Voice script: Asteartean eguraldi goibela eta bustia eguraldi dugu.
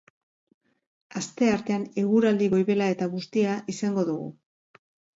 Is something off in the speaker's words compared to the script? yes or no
yes